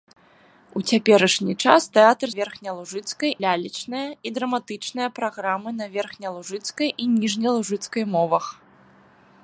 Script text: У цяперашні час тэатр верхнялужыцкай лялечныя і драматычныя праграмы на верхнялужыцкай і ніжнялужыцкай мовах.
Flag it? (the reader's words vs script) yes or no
no